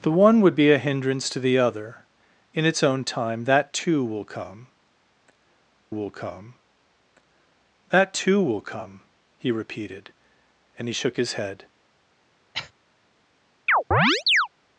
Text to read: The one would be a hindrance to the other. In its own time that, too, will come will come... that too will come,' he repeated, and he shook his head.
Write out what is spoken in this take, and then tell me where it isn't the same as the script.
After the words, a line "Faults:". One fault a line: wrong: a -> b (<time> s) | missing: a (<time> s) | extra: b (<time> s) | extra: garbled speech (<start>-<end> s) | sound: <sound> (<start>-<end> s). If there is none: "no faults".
The one would be a hindrance to the other. In its own time that, too, will come will come... that too will come,' he repeated, and he shook his head.
Faults:
sound: cough (12.5-12.7 s)
sound: chirp (13.7-14.5 s)